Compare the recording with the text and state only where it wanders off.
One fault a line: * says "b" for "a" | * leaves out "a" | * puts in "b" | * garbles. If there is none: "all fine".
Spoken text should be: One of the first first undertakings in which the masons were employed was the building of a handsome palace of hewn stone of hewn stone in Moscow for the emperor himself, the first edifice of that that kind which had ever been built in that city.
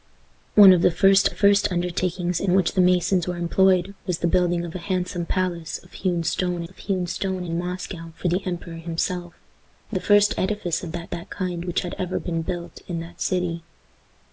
all fine